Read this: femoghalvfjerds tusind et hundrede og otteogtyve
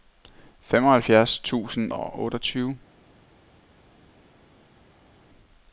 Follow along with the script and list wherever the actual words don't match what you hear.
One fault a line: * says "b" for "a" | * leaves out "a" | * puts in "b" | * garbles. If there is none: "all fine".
* leaves out "et hundrede"